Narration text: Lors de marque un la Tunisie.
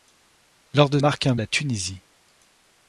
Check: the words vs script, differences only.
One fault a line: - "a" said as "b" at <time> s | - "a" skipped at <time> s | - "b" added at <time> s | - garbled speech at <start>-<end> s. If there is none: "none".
none